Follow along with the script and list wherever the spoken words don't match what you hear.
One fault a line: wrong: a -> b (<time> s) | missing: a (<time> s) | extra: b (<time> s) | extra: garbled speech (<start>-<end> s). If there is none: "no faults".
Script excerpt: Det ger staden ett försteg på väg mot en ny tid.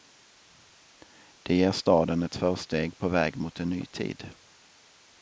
no faults